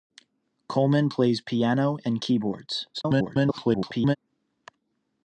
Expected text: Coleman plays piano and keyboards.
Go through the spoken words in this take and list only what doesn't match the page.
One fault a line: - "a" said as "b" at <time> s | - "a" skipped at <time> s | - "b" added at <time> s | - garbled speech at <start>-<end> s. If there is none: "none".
- garbled speech at 2.9-4.2 s